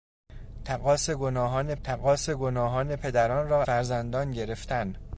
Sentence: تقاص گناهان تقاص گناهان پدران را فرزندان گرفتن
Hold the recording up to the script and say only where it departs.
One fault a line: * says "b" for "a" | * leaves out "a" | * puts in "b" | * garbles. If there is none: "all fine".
all fine